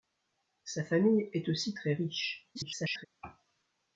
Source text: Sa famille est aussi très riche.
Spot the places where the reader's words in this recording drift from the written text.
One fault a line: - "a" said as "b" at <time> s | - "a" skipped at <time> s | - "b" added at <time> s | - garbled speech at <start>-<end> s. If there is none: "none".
- garbled speech at 2.5-3.1 s